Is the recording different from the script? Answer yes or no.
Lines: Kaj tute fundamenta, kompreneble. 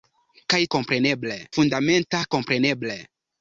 yes